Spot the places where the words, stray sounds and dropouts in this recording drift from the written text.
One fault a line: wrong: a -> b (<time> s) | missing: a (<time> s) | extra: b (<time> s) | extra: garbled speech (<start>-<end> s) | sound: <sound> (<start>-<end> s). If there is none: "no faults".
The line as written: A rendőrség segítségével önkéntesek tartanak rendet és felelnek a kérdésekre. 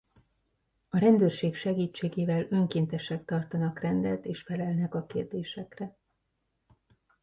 no faults